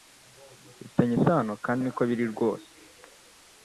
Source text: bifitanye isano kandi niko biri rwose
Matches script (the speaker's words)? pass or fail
pass